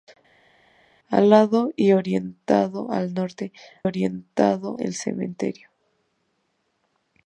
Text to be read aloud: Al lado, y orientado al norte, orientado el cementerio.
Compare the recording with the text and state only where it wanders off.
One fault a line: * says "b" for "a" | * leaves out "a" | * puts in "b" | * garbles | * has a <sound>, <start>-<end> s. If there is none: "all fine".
all fine